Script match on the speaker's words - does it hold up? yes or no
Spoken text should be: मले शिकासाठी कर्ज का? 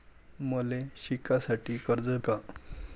yes